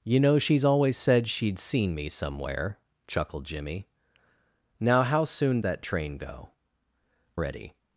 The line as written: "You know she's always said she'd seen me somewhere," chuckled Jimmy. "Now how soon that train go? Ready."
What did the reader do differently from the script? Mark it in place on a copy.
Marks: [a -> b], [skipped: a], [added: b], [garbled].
"You know she's always said she'd seen me somewhere," chuckled Jimmy. "Now how soon that train go? Ready."